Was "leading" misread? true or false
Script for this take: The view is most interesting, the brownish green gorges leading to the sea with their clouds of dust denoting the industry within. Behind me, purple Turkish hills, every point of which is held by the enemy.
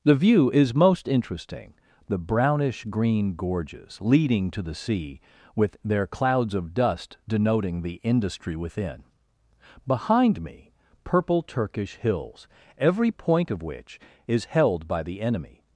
false